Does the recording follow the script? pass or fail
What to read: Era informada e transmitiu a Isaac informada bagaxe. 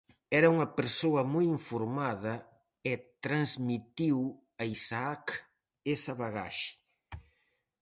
fail